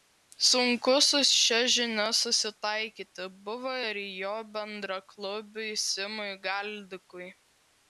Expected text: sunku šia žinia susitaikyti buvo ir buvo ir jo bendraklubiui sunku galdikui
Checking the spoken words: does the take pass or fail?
fail